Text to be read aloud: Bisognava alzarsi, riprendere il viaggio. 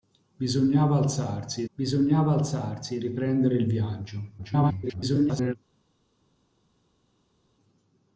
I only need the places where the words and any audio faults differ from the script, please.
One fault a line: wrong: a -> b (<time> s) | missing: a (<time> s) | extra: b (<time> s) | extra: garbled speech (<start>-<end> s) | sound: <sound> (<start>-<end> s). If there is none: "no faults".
extra: bisognava alzarsi (1.7 s)
extra: garbled speech (4.4-5.6 s)